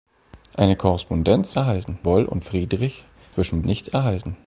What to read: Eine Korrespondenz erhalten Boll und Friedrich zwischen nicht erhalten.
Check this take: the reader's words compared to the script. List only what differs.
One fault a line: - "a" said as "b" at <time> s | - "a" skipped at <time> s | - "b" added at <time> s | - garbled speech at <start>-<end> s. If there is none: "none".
none